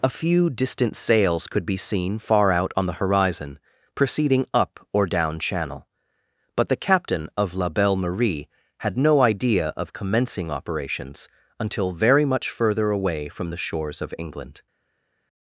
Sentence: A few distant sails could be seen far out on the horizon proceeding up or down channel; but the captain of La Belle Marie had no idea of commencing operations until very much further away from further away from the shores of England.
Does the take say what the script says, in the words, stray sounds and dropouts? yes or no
no